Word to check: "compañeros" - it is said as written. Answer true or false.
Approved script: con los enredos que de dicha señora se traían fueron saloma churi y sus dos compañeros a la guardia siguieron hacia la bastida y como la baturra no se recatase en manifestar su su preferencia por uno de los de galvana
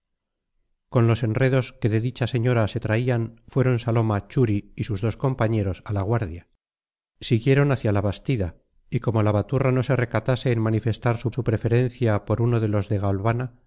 true